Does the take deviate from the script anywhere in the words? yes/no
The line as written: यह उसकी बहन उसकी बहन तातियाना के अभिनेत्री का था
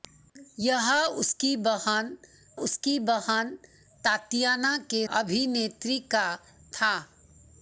no